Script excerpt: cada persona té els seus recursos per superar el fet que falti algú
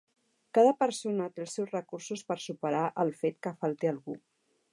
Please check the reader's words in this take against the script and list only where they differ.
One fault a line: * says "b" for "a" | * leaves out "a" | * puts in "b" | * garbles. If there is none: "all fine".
all fine